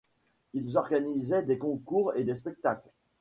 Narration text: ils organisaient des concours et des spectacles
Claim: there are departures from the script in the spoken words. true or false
false